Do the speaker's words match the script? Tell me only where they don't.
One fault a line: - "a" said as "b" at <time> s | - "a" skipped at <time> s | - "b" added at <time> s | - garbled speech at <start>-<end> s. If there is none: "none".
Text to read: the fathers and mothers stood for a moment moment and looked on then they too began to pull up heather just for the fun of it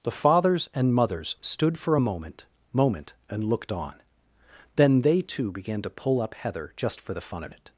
none